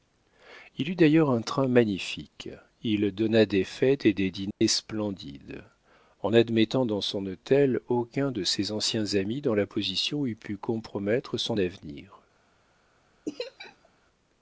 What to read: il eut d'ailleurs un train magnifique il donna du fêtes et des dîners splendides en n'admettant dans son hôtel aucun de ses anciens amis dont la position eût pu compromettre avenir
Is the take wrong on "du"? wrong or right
wrong